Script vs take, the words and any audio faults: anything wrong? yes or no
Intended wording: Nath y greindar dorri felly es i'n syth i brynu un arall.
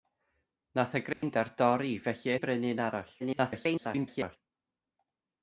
yes